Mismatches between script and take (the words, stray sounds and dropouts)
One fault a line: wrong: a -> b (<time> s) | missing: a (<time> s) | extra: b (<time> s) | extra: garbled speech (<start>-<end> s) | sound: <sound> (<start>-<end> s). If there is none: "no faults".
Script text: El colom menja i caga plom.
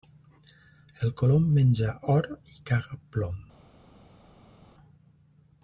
extra: or (2.1 s)